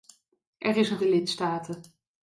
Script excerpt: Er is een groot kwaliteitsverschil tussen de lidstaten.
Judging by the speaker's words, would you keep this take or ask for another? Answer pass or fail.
fail